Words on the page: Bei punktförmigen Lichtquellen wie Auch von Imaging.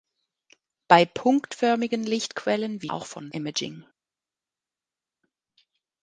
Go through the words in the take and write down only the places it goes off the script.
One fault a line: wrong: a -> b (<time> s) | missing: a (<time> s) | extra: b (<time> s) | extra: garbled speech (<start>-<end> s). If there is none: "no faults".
no faults